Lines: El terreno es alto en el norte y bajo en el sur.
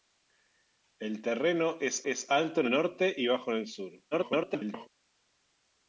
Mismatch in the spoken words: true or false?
true